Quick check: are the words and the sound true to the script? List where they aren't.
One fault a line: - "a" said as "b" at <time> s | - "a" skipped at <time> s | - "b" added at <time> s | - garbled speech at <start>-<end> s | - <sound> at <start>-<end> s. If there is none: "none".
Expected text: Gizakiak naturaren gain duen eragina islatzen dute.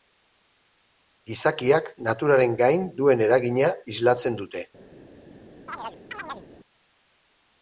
- chirp at 5.7-6.5 s